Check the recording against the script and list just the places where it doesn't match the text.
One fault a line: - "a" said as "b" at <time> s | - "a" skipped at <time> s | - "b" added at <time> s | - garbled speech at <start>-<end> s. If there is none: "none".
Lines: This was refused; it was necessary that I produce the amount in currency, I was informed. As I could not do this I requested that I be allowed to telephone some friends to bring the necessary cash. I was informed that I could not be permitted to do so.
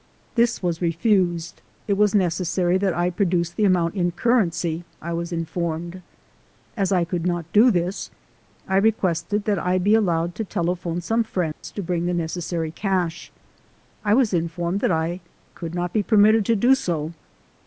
none